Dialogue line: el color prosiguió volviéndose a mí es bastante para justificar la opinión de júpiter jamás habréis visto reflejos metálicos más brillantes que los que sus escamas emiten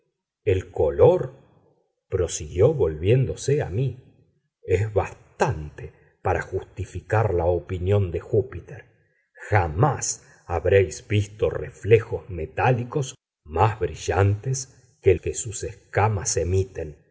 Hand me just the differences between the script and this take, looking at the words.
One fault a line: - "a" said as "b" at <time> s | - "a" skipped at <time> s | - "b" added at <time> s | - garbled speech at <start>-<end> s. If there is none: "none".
- "los" skipped at 15.1 s